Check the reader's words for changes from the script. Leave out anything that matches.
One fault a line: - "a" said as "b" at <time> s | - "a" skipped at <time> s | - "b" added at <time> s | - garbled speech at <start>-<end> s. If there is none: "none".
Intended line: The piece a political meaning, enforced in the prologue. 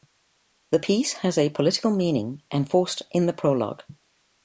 - "has" added at 1.1 s